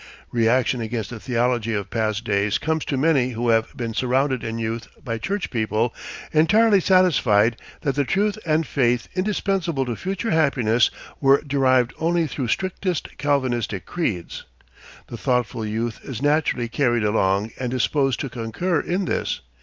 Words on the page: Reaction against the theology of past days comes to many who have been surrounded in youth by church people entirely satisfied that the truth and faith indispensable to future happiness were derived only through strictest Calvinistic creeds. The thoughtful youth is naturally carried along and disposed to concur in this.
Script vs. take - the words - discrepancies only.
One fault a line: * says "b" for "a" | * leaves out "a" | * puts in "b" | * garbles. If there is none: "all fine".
all fine